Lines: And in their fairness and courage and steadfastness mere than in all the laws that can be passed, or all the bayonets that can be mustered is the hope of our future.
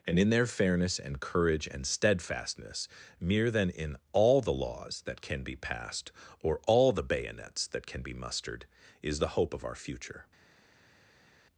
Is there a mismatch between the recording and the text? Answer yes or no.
no